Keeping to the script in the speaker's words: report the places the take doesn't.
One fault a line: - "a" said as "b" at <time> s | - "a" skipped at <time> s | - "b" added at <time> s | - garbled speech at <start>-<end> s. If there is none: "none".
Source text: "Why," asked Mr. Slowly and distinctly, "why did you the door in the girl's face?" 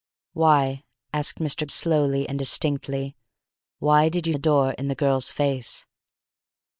none